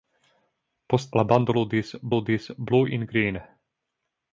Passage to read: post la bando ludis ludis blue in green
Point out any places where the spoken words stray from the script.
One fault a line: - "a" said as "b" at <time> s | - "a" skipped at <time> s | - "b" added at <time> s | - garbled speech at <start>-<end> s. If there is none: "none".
none